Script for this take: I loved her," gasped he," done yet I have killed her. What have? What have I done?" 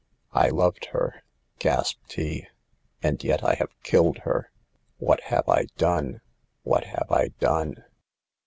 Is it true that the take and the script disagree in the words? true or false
true